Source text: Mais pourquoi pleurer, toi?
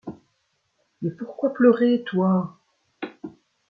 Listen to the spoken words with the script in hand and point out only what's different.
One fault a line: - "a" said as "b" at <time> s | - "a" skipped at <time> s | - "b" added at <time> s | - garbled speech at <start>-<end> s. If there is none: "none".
none